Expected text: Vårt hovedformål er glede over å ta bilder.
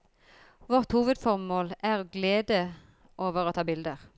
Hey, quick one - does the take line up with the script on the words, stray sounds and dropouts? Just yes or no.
yes